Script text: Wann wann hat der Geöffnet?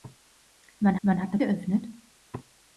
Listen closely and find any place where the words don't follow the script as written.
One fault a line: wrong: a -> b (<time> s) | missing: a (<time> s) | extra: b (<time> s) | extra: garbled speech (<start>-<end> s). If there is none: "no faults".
no faults